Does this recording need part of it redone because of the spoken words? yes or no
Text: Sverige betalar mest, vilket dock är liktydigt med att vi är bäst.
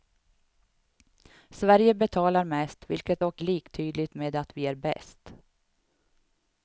no